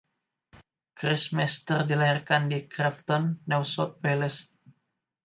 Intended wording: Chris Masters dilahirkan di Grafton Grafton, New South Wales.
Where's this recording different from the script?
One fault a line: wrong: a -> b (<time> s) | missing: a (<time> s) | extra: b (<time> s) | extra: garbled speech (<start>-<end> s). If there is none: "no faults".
missing: Grafton (3.5 s)